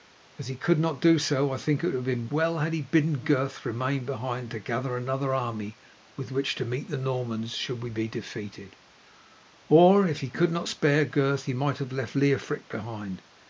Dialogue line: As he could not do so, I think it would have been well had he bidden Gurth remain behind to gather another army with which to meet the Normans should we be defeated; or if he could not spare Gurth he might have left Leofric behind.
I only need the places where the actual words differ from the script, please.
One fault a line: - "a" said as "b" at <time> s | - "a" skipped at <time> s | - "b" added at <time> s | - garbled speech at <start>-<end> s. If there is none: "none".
none